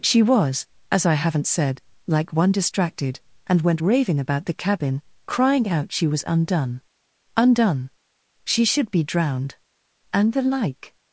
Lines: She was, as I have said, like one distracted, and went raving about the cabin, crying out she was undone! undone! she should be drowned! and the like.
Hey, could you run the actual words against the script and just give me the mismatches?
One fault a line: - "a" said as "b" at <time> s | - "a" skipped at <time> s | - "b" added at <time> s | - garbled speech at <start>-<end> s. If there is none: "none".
- "have" said as "haven't" at 1.1 s